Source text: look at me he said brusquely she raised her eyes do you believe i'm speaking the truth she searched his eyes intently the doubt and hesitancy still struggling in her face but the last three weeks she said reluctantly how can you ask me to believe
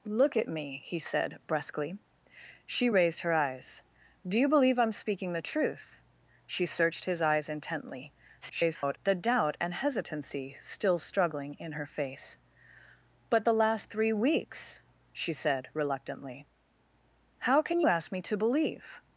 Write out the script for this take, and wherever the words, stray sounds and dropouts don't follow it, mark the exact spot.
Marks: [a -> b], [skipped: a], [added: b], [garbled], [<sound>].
look at me he said brusquely she raised her eyes do you believe i'm speaking the truth she searched his eyes intently [garbled] the doubt and hesitancy still struggling in her face but the last three weeks she said reluctantly how can [skipped: you] ask me to believe